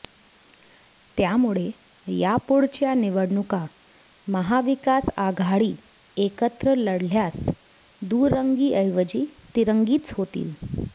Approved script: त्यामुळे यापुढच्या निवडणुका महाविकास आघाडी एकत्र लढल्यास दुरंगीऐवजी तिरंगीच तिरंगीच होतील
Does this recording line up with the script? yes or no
no